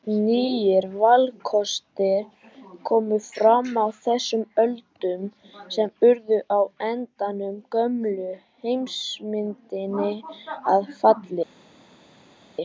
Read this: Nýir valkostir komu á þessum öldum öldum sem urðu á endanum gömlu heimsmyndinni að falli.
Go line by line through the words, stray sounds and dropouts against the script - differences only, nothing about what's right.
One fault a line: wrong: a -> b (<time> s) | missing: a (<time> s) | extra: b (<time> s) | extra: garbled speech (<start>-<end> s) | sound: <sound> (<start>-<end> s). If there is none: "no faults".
extra: fram (3.2 s)
missing: öldum (5.3 s)